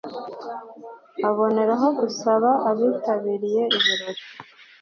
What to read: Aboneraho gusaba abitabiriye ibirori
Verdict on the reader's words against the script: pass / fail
pass